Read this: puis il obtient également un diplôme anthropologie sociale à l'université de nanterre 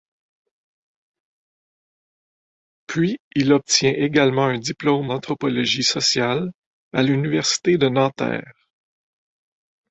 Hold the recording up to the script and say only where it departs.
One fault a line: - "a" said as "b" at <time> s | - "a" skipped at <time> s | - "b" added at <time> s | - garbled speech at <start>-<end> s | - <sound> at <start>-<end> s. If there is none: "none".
none